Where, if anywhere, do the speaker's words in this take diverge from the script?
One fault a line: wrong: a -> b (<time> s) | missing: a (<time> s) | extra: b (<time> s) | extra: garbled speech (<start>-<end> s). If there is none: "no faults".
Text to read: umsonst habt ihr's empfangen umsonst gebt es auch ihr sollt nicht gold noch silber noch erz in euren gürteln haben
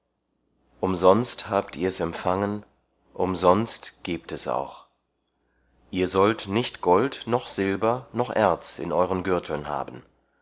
no faults